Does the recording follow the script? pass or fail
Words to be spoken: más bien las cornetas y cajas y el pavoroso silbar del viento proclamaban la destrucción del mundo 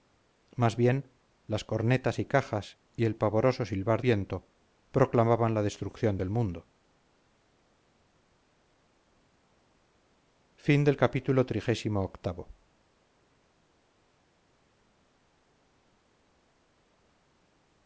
fail